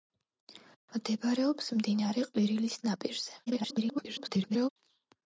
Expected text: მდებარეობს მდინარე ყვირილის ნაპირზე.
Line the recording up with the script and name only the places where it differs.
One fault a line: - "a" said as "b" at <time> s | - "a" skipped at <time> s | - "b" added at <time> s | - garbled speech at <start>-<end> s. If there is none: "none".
- garbled speech at 3.5-4.7 s